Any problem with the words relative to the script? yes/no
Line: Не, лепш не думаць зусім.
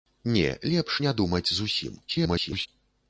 yes